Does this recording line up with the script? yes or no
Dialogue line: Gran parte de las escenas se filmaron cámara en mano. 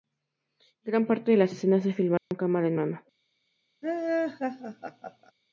yes